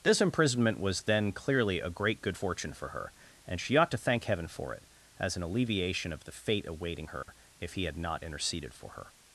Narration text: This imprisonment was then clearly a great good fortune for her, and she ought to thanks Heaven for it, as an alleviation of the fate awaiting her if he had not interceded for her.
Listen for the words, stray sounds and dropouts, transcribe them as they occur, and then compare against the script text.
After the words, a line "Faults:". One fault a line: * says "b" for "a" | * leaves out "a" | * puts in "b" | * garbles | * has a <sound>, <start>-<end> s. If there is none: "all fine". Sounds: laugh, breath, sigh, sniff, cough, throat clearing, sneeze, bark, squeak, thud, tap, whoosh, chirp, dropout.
This imprisonment was then clearly a great good fortune for her, and she ought to thank Heaven for it, as an alleviation of the fate awaiting her if he had not interceded for her.
Faults:
* says "thank" for "thanks"
* has a dropout, 7.2-7.3 s